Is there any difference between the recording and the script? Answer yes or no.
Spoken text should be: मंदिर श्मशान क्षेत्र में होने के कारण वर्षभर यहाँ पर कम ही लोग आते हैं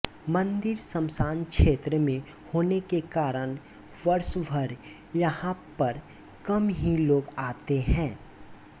no